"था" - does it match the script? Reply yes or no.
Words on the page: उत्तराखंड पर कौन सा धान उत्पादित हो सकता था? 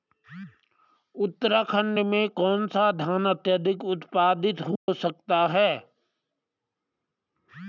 no